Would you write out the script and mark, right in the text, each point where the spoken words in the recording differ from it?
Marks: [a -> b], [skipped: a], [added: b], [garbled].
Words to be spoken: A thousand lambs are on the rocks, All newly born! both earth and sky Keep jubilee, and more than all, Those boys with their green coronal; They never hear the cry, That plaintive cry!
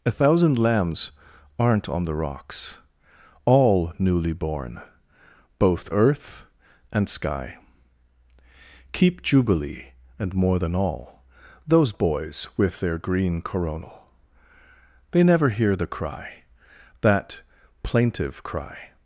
A thousand lambs [are -> aren't] on the rocks, All newly born! both earth and sky Keep jubilee, and more than all, Those boys with their green coronal; They never hear the cry, That plaintive cry!